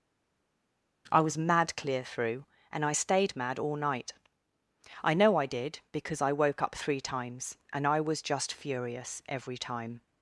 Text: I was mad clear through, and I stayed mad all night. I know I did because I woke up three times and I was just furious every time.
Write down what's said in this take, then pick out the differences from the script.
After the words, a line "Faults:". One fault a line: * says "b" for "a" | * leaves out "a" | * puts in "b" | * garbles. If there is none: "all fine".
I was mad clear through, and I stayed mad all night. I know I did because I woke up three times and I was just furious every time.
Faults:
all fine